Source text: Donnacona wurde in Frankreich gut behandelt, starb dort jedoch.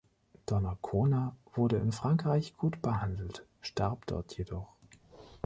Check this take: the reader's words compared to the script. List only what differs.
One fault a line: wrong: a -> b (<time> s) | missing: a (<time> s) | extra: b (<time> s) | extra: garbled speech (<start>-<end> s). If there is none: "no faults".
no faults